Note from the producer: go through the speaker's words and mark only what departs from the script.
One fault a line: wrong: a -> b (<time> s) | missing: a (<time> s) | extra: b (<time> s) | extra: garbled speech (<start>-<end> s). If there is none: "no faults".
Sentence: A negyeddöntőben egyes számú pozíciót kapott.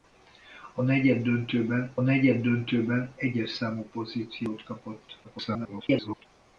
extra: negyeddöntőben (2.0 s)
extra: garbled speech (5.2-6.3 s)